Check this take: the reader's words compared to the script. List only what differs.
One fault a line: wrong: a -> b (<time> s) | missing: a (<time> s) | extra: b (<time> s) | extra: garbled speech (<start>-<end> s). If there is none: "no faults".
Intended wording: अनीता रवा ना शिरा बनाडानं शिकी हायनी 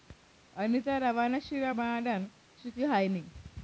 no faults